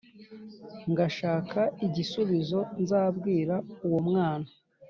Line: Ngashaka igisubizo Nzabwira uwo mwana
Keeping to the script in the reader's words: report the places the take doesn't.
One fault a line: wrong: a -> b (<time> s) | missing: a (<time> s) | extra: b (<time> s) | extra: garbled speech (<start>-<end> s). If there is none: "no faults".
no faults